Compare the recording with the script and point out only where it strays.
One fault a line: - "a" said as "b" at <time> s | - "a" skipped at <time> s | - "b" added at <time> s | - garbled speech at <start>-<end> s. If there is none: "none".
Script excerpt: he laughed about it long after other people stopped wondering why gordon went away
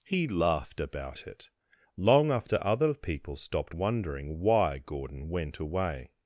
none